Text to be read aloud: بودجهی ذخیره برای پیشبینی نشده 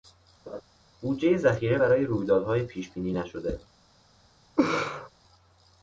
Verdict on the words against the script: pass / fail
fail